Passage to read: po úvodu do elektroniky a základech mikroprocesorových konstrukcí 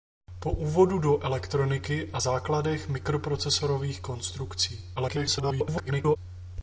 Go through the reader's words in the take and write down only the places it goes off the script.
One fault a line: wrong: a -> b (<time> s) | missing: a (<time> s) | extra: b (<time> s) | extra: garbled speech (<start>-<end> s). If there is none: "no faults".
extra: garbled speech (5.0-6.2 s)